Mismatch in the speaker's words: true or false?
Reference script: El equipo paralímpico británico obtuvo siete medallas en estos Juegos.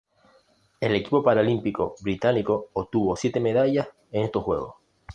false